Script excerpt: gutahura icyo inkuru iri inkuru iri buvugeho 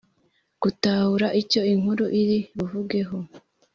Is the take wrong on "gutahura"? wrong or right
right